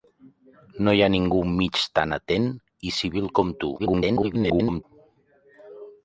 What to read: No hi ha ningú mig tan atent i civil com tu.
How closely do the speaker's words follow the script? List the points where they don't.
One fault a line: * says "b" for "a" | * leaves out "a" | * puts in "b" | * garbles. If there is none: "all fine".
* garbles